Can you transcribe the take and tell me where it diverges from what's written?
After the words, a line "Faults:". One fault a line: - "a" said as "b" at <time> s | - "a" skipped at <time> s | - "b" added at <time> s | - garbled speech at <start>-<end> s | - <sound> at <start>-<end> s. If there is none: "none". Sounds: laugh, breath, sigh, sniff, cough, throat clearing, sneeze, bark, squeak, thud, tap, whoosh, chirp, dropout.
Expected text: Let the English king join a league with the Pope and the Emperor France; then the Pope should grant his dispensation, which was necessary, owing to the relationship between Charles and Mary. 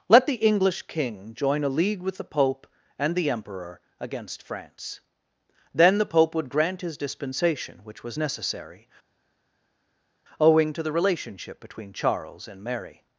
Let the English king join a league with the Pope and the Emperor against France; then the Pope would grant his dispensation, which was necessary, owing to the relationship between Charles and Mary.
Faults:
- "against" added at 4.0 s
- "should" said as "would" at 6.3 s